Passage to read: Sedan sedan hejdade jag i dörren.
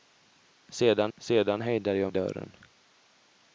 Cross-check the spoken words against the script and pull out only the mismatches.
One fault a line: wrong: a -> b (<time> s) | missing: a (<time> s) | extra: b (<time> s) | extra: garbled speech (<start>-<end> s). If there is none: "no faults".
no faults